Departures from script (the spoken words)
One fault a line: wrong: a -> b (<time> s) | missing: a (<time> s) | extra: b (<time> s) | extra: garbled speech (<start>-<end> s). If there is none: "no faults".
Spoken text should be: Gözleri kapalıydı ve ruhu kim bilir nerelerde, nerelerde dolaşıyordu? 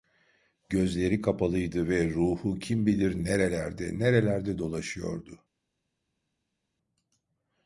no faults